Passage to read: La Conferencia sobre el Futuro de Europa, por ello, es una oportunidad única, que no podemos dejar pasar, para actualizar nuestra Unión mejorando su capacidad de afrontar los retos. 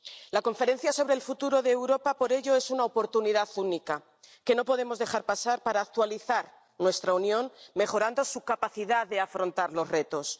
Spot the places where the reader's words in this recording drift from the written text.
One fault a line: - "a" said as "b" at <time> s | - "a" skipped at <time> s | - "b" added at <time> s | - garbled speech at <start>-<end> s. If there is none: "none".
none